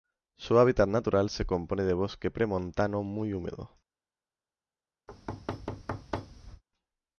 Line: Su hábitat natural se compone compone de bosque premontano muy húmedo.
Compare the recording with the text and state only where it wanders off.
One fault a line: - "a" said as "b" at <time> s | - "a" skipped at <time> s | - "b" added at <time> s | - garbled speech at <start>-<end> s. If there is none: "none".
- "compone" skipped at 1.8 s